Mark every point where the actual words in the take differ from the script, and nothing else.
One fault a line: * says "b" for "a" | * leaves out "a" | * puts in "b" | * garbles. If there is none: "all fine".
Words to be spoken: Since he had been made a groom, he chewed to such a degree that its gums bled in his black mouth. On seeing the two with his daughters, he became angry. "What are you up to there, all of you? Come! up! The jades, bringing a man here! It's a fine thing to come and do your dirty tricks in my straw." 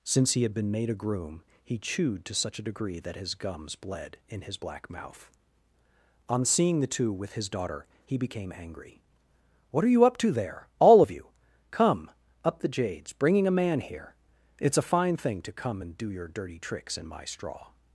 * says "his" for "its"
* says "daughter" for "daughters"